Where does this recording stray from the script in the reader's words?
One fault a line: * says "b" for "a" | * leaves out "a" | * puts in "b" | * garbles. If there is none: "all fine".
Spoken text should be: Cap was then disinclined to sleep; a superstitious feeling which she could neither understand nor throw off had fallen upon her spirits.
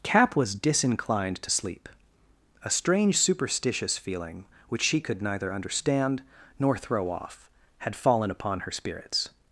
* leaves out "then"
* puts in "strange"